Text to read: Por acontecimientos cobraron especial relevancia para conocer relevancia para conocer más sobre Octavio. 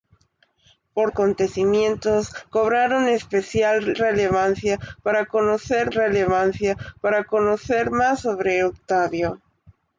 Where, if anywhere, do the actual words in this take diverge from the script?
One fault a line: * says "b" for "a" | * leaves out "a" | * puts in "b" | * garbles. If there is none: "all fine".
all fine